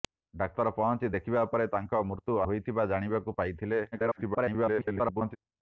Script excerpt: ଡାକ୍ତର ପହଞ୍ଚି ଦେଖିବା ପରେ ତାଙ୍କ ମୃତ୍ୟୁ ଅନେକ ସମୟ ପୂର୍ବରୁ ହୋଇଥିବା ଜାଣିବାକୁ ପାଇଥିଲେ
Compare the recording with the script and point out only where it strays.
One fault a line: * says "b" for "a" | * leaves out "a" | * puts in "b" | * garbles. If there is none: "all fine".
* leaves out "ଅନେକ ସମୟ ପୂର୍ବରୁ"
* garbles